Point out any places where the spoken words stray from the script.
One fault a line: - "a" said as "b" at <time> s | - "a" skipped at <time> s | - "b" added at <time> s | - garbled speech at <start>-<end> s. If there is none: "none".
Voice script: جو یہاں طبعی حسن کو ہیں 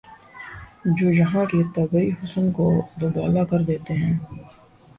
- "کے" added at 1.4 s
- "دوبالا کر دیتے" added at 3.0 s